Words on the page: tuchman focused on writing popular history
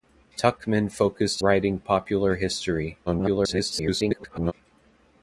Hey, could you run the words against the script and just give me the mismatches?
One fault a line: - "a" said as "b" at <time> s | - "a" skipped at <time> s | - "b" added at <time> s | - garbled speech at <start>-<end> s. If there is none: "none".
- "on" skipped at 1.4 s
- garbled speech at 3.1-4.5 s